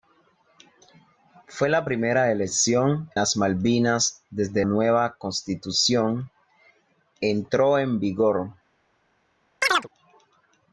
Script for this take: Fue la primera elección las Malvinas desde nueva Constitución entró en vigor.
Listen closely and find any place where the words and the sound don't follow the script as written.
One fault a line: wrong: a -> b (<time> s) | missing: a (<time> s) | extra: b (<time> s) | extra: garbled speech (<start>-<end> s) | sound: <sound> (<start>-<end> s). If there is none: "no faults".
sound: chirp (9.6-9.9 s)